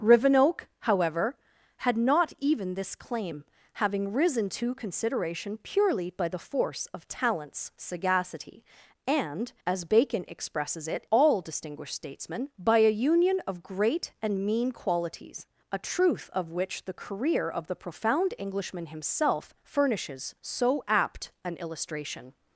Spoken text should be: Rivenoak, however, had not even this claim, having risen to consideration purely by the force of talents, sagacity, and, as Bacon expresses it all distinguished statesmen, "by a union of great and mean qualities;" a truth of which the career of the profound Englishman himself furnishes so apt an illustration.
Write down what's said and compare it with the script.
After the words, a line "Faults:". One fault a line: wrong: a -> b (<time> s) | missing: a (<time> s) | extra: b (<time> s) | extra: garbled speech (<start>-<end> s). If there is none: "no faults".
Rivenoak, however, had not even this claim, having risen to consideration purely by the force of talents, sagacity, and, as Bacon expresses it all distinguished statesmen, "by a union of great and mean qualities;" a truth of which the career of the profound Englishman himself furnishes so apt an illustration.
Faults:
no faults